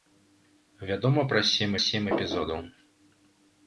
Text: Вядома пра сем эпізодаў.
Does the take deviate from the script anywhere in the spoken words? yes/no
yes